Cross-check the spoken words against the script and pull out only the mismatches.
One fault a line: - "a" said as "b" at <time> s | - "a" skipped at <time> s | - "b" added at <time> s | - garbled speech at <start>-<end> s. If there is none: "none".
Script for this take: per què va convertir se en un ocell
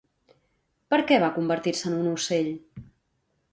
none